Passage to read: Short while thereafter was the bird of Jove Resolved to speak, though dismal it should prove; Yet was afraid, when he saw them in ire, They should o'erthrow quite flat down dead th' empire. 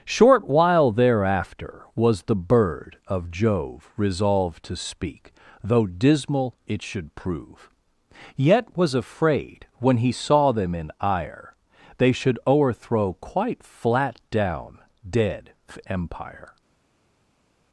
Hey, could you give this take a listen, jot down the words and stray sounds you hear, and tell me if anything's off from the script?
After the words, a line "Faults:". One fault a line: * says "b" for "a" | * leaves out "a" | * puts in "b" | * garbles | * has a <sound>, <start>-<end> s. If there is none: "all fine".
Short while thereafter was the bird of Jove Resolved to speak, though dismal it should prove; Yet was afraid, when he saw them in ire, They should o'erthrow quite flat down dead' empire.
Faults:
* leaves out "th"